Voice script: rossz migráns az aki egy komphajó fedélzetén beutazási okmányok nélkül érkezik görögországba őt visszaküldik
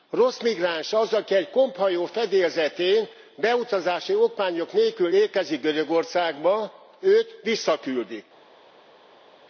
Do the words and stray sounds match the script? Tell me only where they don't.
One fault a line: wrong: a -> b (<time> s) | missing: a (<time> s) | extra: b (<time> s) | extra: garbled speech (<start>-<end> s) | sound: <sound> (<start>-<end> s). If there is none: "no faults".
no faults